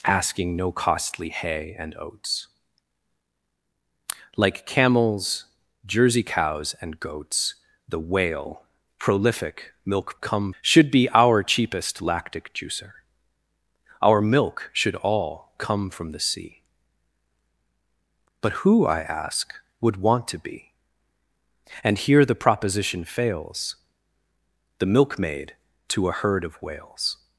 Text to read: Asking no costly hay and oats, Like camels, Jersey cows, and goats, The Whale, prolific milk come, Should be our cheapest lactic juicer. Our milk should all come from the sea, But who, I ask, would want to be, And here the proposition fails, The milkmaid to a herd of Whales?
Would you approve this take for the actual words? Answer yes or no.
yes